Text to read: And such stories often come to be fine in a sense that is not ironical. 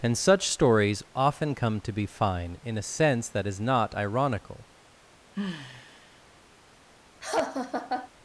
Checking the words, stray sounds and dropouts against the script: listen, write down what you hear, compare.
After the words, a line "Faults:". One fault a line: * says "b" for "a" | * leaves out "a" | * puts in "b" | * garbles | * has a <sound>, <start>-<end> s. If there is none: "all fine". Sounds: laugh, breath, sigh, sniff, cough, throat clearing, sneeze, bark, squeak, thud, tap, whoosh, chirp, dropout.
And such stories often come to be fine in a sense that is not ironical.
Faults:
* has a sigh, 5.3-6.2 s
* has a laugh, 7.2-8.1 s